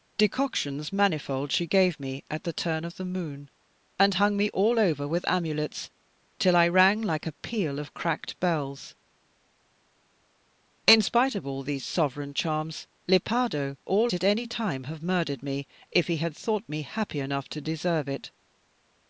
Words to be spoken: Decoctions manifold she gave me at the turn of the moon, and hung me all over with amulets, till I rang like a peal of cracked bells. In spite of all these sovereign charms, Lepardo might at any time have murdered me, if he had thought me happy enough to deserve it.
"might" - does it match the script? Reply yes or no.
no